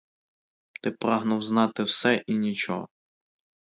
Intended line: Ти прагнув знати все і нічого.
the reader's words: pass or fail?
pass